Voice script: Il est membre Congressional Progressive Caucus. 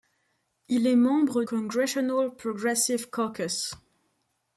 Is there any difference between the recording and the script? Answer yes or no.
no